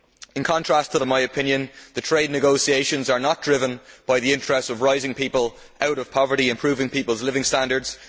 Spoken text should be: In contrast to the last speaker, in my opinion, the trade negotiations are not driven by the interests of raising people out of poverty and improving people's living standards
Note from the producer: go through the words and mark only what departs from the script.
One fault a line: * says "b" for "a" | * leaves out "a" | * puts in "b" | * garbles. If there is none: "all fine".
* leaves out "last speaker"